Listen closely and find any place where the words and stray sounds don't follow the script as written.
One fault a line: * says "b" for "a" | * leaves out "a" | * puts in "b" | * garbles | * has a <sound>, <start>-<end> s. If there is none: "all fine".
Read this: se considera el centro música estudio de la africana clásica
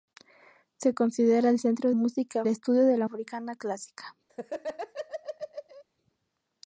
* has a laugh, 4.3-5.8 s